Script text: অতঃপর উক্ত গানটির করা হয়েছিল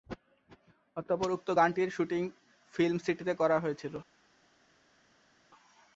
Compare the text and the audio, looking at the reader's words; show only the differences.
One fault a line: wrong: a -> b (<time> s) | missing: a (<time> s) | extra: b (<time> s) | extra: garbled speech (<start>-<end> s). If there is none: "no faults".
extra: শুটিং ফিল্ম সিটিতে (1.9 s)